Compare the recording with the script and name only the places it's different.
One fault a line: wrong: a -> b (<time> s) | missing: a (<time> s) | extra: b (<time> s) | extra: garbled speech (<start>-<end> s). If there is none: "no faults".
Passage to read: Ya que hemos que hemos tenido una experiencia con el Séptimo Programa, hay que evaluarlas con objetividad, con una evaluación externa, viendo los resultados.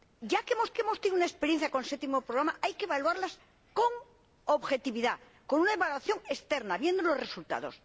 no faults